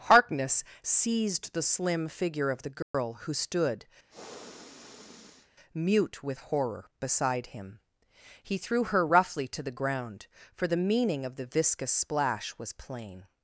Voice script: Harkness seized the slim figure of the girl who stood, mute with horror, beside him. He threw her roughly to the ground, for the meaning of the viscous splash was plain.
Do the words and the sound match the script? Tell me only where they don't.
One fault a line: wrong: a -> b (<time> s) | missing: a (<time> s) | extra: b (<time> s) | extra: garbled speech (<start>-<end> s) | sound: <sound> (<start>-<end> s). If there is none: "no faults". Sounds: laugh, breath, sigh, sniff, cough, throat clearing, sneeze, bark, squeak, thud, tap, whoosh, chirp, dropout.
sound: dropout (2.8-2.9 s)
sound: sniff (4.1-5.5 s)